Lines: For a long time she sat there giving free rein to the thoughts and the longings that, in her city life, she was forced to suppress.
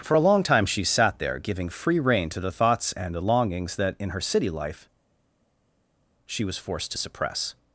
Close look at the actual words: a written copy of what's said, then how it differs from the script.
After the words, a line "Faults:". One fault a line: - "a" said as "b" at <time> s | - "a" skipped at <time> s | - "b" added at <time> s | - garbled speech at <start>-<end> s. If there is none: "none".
For a long time she sat there giving free rein to the thoughts and the longings that, in her city life, she was forced to suppress.
Faults:
none